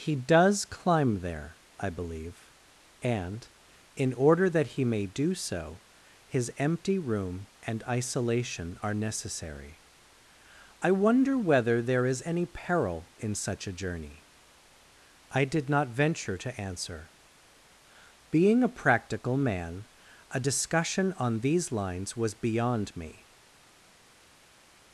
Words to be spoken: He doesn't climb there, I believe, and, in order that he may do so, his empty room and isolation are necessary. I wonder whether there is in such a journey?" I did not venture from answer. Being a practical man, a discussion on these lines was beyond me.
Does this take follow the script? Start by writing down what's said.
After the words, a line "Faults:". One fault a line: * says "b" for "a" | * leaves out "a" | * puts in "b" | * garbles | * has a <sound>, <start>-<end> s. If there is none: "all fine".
He does climb there, I believe, and, in order that he may do so, his empty room and isolation are necessary. I wonder whether there is any peril in such a journey?" I did not venture to answer. Being a practical man, a discussion on these lines was beyond me.
Faults:
* says "does" for "doesn't"
* puts in "any peril"
* says "to" for "from"